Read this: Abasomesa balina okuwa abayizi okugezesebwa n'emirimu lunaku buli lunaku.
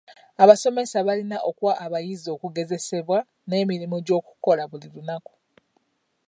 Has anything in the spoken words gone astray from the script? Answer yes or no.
yes